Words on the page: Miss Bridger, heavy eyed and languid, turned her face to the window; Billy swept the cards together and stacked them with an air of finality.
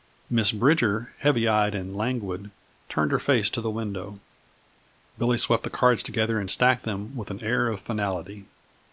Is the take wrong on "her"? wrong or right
right